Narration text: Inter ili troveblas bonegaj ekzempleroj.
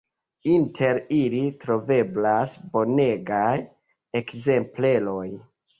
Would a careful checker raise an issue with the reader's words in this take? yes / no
no